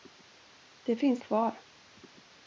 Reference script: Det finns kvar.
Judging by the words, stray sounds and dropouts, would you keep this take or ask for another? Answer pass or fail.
pass